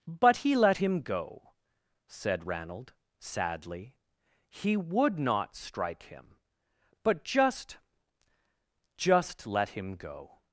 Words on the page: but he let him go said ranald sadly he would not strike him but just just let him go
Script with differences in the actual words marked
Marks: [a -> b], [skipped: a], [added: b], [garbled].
but he let him go said ranald sadly he would not strike him but just just let him go